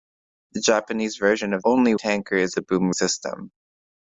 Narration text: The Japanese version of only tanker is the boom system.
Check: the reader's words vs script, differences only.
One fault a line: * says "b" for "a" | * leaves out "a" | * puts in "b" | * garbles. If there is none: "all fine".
all fine